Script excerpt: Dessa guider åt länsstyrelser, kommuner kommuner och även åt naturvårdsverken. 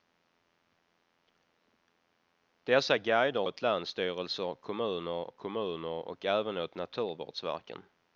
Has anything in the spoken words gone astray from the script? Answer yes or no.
no